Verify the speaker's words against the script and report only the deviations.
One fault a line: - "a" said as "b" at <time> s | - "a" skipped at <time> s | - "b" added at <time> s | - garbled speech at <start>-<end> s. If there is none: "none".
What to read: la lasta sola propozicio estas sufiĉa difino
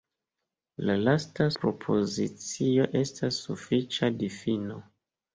- "sola" skipped at 1.5 s